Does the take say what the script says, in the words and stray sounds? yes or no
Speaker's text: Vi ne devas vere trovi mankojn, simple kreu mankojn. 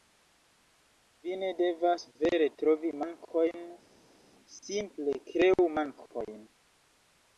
yes